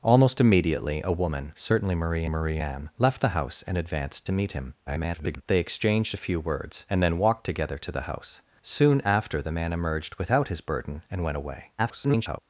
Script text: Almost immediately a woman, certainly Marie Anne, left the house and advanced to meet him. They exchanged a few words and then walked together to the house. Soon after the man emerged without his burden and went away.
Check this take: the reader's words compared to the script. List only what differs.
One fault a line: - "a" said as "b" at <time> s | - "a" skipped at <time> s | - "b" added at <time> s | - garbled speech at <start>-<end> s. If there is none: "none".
- "Marie" added at 2.2 s
- garbled speech at 4.9-5.4 s
- garbled speech at 11.8-12.4 s